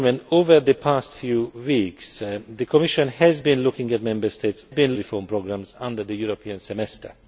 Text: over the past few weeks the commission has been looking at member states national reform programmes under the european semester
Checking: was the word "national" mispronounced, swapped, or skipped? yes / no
yes